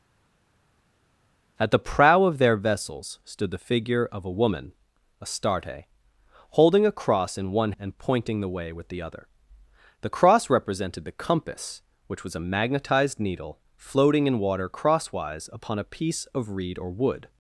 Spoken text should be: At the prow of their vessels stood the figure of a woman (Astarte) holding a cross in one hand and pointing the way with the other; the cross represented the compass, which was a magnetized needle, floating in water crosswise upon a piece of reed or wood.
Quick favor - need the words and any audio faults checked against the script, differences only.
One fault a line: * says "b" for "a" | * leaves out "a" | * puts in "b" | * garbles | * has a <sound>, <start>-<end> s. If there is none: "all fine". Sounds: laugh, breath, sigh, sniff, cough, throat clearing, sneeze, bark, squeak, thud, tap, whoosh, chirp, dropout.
* leaves out "hand"